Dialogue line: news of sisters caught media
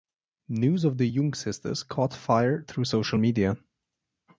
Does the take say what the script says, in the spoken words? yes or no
no